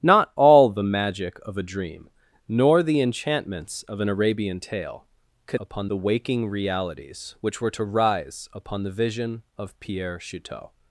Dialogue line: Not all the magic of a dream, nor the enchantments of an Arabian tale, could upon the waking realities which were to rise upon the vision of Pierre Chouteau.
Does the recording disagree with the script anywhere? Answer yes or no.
no